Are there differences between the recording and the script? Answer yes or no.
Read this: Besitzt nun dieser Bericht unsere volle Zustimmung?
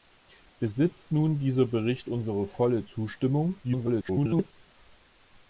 yes